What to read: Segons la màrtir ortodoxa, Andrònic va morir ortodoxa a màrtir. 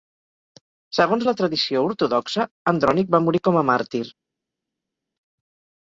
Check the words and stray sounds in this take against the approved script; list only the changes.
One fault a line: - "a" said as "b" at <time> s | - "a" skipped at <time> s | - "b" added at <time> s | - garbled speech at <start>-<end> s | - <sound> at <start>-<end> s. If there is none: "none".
- "màrtir" said as "tradició" at 1.4 s
- "ortodoxa" said as "com" at 3.5 s